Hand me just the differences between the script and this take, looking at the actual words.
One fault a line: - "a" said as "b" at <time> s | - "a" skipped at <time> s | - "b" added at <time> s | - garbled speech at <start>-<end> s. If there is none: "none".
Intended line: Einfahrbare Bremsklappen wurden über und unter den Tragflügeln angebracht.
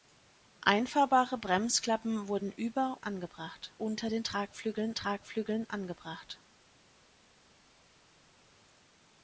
- "und" said as "angebracht" at 3.0 s
- "Tragflügeln" added at 5.0 s